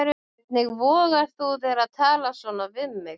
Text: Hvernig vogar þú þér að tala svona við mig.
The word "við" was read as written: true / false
true